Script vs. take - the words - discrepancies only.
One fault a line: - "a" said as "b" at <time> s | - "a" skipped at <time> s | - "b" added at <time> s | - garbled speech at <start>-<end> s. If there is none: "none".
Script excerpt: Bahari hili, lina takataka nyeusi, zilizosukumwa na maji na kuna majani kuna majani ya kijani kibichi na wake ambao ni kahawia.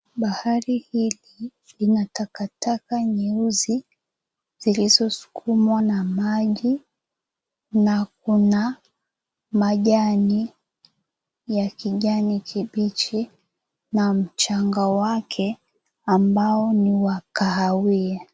- "kuna majani" skipped at 10.5 s
- "mchanga" added at 14.1 s
- "wa" added at 16.9 s